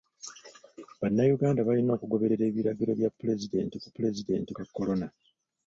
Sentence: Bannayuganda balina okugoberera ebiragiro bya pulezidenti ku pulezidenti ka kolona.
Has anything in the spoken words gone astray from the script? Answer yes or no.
no